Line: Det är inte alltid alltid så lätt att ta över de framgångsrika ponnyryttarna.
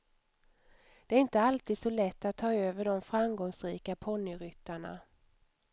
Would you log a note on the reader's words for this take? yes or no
yes